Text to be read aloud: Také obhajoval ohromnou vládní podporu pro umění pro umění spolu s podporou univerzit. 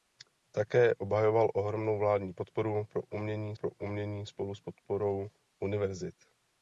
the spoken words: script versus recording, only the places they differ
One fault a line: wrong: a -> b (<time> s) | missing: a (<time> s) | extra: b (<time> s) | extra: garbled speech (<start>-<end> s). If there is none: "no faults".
no faults